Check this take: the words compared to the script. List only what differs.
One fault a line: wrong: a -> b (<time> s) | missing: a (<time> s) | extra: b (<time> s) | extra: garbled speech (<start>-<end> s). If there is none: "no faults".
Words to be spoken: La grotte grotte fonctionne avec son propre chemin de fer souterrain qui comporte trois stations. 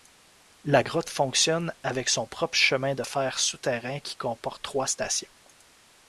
missing: grotte (1.1 s)